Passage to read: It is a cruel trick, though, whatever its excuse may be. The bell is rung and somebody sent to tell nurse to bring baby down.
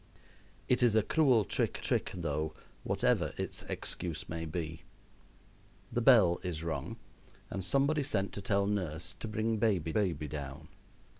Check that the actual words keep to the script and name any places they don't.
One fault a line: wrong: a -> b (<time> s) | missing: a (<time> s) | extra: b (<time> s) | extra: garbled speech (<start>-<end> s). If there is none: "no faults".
extra: trick (1.8 s)
extra: baby (9.9 s)